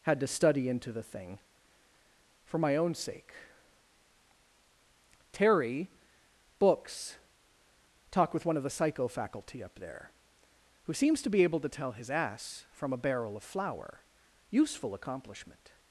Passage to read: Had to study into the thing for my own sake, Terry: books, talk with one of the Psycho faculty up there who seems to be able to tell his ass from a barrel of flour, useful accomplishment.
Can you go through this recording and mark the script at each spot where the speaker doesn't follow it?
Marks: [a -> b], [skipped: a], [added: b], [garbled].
Had to study into the thing for my own sake, Terry: books, talk with one of the Psycho faculty up there who seems to be able to tell his ass from a barrel of flour, useful accomplishment.